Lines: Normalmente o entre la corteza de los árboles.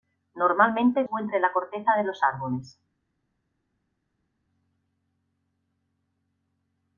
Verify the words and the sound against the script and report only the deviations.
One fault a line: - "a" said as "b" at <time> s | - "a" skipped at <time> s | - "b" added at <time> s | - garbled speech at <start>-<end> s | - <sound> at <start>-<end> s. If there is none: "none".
none